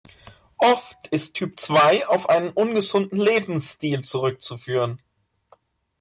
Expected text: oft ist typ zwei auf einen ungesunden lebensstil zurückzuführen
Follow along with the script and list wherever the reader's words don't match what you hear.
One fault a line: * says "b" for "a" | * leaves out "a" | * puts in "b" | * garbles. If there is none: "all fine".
all fine